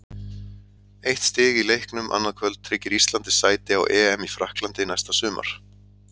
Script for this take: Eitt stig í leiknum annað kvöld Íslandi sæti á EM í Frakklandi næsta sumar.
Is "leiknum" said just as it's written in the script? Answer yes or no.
yes